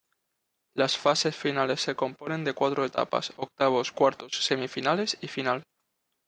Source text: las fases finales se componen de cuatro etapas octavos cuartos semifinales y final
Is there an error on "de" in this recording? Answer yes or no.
no